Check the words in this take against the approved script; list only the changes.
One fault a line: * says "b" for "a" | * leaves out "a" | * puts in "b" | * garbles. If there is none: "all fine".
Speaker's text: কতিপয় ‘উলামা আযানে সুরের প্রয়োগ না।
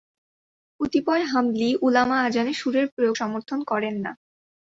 * puts in "হাম্বলী"
* puts in "সমর্থন করেন"